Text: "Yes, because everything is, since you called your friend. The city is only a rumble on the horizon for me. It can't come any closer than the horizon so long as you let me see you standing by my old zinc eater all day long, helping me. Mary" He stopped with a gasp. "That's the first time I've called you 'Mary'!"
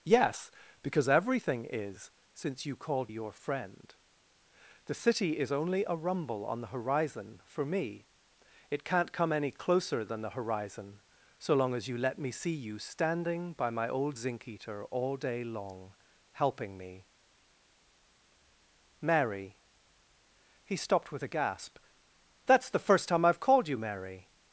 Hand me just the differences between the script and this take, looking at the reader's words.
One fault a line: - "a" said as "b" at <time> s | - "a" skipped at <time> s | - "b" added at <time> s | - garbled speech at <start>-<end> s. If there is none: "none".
none